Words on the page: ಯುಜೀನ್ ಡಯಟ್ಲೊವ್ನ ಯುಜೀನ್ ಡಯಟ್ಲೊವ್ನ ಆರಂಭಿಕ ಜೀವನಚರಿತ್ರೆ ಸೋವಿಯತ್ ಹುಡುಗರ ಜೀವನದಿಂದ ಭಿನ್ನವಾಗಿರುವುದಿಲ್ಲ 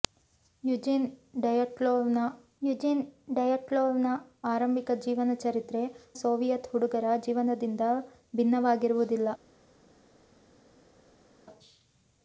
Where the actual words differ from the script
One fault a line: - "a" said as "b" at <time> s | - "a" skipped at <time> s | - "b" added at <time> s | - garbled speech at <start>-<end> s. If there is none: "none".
none